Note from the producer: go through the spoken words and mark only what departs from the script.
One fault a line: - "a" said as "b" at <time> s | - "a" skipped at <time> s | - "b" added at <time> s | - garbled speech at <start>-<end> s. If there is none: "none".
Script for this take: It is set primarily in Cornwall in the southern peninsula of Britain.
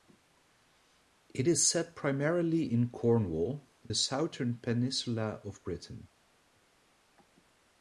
- "in" skipped at 3.7 s